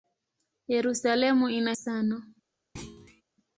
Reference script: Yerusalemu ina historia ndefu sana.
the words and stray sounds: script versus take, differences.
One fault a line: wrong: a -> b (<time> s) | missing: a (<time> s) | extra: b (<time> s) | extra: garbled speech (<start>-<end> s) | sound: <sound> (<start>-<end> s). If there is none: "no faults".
missing: historia ndefu (1.7 s)
sound: thud (2.8-3.2 s)